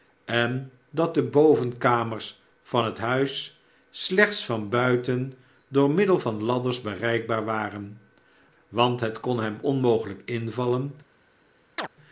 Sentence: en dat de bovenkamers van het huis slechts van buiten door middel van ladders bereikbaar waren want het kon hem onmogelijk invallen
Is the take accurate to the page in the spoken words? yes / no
yes